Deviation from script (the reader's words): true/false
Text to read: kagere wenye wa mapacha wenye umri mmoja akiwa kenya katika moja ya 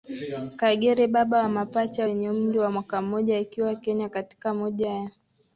true